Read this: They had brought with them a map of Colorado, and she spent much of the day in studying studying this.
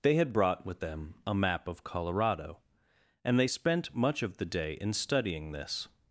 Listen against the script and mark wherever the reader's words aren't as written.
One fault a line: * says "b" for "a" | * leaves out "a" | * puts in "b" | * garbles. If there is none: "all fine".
* says "they" for "she"
* leaves out "studying"